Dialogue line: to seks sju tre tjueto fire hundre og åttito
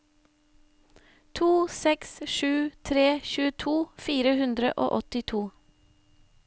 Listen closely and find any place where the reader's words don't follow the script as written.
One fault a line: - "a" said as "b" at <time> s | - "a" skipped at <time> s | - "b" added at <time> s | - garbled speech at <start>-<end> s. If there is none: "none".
none